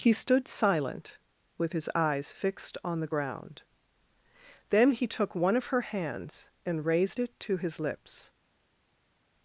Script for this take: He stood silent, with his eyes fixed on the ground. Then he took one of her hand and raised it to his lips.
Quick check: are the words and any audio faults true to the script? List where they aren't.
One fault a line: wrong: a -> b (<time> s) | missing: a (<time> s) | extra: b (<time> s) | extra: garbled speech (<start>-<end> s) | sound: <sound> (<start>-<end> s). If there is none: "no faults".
wrong: hand -> hands (5.8 s)